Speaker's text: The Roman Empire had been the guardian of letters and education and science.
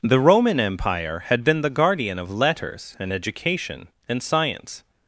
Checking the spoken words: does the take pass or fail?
pass